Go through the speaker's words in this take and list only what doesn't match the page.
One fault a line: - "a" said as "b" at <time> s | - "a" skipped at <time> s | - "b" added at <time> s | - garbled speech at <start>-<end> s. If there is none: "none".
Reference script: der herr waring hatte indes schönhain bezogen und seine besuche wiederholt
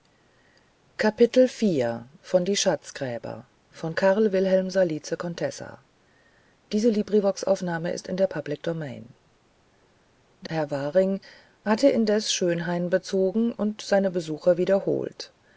none